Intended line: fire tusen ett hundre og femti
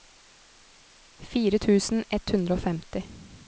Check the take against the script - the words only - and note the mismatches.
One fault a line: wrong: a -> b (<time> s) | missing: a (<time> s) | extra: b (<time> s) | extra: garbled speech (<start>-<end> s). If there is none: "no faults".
no faults